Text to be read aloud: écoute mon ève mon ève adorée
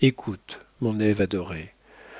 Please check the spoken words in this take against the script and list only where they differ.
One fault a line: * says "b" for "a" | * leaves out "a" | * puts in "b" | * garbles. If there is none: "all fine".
* leaves out "mon ève"